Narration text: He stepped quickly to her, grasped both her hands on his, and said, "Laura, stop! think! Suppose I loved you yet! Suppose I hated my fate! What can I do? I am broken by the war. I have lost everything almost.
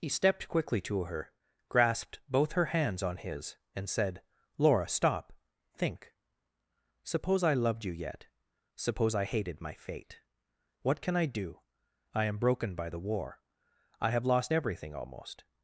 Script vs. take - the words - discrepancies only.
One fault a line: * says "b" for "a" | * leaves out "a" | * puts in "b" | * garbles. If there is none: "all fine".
all fine